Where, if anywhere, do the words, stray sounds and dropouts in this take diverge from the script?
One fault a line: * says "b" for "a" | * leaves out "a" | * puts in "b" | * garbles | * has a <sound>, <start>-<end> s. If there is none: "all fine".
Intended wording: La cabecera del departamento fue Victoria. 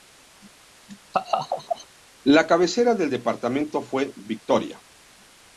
* has a laugh, 1.1-1.9 s